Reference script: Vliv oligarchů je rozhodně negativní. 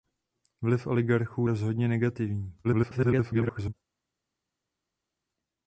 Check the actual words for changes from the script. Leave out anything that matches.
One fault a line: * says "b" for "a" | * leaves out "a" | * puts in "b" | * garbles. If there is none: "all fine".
* leaves out "je"
* garbles